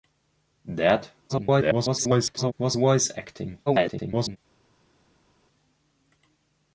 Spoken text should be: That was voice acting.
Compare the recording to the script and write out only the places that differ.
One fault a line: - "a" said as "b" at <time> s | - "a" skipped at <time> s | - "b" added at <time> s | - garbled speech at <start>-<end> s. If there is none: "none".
- garbled speech at 1.3-2.5 s
- garbled speech at 3.7-4.4 s